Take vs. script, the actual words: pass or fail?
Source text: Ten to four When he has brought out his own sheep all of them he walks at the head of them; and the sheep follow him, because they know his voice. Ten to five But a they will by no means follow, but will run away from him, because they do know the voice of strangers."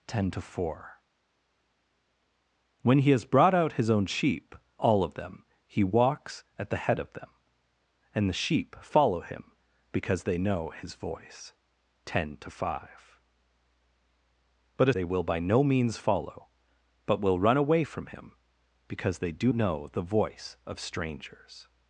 pass